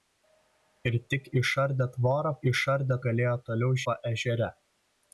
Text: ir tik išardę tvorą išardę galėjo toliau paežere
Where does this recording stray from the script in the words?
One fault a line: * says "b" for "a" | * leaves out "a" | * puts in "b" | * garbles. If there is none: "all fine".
all fine